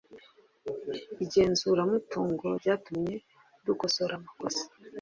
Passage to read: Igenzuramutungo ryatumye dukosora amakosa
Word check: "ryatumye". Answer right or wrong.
right